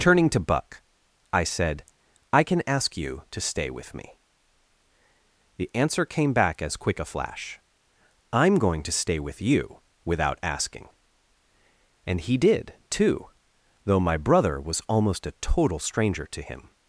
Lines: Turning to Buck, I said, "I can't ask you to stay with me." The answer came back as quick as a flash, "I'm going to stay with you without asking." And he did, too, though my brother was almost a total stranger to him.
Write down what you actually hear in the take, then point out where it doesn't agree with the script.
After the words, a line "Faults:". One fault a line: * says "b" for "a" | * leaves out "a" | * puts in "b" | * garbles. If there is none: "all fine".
Turning to Buck, I said, "I can ask you to stay with me." The answer came back as quick a flash, "I'm going to stay with you without asking." And he did, too, though my brother was almost a total stranger to him.
Faults:
* says "can" for "can't"
* leaves out "as"